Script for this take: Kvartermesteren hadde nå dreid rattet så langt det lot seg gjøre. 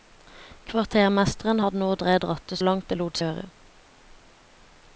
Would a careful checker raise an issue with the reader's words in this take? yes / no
yes